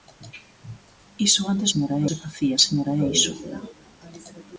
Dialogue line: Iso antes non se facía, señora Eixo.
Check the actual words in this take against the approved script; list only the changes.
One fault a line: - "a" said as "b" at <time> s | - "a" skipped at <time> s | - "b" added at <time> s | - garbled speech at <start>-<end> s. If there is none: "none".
- "non" said as "señora" at 1.7 s